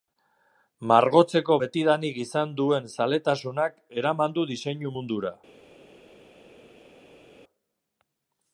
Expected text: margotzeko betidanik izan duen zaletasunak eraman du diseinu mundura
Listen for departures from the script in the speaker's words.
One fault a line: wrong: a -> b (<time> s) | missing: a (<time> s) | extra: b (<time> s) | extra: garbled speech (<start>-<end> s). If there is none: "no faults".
no faults